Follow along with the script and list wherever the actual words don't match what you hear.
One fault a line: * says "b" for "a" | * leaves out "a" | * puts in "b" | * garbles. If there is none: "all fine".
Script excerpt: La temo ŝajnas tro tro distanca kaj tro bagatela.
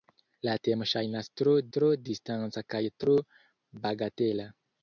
all fine